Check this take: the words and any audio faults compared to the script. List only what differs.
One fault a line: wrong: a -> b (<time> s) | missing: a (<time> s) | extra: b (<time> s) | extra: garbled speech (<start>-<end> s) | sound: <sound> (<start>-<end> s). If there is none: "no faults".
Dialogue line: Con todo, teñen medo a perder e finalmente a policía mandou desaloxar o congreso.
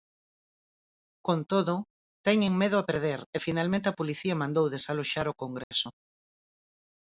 sound: dropout (5.6-5.7 s)